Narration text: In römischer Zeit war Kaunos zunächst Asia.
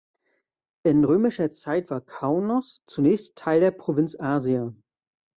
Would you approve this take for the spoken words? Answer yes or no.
no